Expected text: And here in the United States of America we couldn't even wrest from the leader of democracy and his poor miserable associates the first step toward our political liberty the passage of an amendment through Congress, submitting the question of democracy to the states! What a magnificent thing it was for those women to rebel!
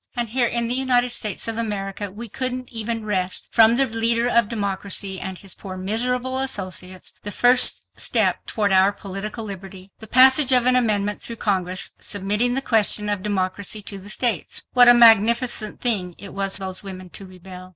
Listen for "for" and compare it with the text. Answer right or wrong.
wrong